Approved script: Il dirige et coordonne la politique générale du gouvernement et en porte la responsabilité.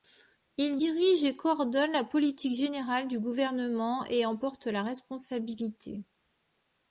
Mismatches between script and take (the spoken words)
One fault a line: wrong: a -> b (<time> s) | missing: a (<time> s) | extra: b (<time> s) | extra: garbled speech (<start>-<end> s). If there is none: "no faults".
no faults